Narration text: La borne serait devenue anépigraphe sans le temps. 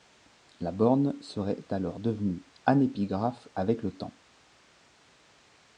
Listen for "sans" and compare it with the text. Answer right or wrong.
wrong